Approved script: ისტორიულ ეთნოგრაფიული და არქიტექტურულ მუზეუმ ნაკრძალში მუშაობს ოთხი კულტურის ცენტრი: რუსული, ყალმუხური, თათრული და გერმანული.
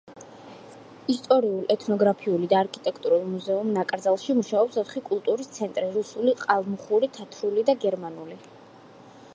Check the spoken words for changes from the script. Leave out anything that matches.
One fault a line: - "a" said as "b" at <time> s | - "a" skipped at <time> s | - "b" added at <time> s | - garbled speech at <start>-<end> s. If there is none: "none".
none